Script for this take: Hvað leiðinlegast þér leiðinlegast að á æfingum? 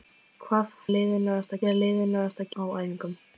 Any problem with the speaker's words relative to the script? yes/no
no